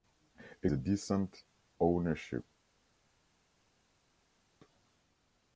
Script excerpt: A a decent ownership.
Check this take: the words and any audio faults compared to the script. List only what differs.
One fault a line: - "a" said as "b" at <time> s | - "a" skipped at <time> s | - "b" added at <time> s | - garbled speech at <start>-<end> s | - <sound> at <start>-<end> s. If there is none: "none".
none